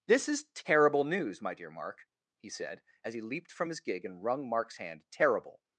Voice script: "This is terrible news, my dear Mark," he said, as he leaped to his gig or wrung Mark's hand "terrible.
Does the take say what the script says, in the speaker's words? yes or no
no